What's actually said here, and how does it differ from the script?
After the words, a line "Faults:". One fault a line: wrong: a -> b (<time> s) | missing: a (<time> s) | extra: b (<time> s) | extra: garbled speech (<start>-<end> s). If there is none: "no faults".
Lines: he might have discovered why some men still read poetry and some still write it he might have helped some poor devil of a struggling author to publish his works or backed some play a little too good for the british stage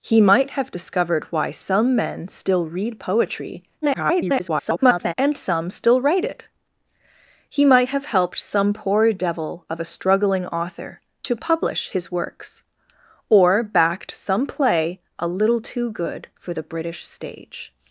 he might have discovered why some men still read poetry [garbled] and some still write it he might have helped some poor devil of a struggling author to publish his works or backed some play a little too good for the british stage
Faults:
extra: garbled speech (3.8-5.1 s)